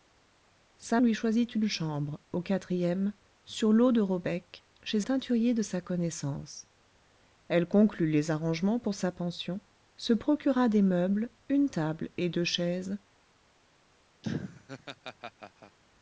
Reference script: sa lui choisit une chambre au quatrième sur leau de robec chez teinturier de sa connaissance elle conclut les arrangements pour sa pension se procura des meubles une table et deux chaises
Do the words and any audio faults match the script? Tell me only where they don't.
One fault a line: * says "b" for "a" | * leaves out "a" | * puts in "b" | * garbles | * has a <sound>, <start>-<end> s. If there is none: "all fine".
* has a laugh, 14.2-15.8 s